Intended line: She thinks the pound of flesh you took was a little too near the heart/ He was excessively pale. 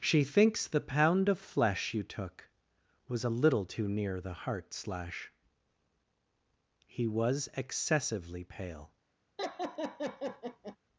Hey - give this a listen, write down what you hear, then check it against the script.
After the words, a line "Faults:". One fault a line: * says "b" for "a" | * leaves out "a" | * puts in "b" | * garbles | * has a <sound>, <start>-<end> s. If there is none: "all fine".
She thinks the pound of flesh you took was a little too near the heart/ slash He was excessively pale.
Faults:
* puts in "slash"
* has a laugh, 9.4-10.8 s